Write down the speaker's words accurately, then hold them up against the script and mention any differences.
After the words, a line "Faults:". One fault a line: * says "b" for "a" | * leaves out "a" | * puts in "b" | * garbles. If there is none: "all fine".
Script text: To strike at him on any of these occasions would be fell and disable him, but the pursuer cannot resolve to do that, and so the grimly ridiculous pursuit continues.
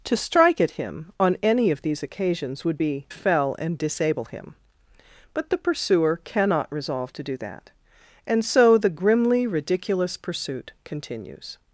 To strike at him on any of these occasions would be fell and disable him, but the pursuer cannot resolve to do that, and so the grimly ridiculous pursuit continues.
Faults:
all fine